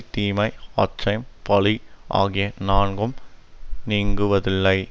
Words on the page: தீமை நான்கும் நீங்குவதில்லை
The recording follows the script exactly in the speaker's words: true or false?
false